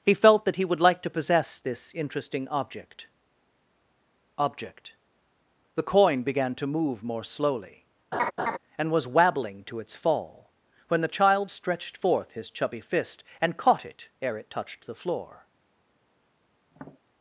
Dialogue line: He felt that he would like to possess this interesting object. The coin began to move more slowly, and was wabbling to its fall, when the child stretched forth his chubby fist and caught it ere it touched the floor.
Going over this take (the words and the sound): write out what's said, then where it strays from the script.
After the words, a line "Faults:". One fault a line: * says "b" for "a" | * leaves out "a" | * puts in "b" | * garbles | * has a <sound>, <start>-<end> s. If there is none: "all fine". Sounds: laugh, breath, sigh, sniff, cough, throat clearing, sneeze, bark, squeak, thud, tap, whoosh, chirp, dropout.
He felt that he would like to possess this interesting object object. The coin began to move more slowly, and was wabbling to its fall, when the child stretched forth his chubby fist and caught it ere it touched the floor.
Faults:
* puts in "object"
* has a laugh, 8.1-8.6 s
* has a tap, 16.7-17.0 s